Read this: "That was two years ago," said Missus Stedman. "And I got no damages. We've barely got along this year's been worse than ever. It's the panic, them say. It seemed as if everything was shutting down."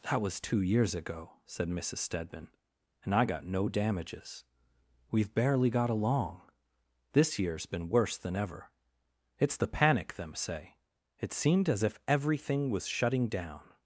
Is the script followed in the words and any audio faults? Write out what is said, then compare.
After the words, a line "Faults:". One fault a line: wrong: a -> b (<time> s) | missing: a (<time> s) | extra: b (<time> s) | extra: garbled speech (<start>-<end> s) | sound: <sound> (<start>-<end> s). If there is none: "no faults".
"That was two years ago," said Missus Stedman. "And I got no damages. We've barely got along this year's been worse than ever. It's the panic, them say. It seemed as if everything was shutting down."
Faults:
no faults